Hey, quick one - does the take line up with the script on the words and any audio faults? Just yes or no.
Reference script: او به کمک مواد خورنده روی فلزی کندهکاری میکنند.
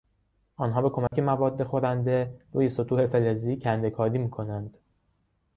no